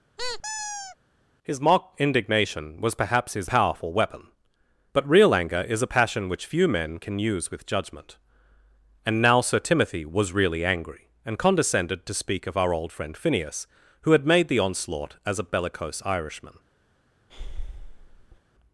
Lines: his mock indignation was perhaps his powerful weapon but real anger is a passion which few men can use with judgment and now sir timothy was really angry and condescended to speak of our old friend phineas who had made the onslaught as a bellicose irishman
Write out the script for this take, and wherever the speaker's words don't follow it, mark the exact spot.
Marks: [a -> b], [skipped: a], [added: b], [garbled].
his mock indignation was perhaps his powerful weapon but real anger is a passion which few men can use with judgment and now sir timothy was really angry and condescended to speak of our old friend phineas who had made the onslaught as a bellicose irishman